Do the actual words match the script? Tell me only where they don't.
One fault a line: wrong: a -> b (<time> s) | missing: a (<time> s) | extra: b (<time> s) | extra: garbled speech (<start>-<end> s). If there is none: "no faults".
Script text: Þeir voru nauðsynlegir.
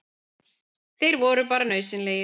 extra: bara (1.5 s)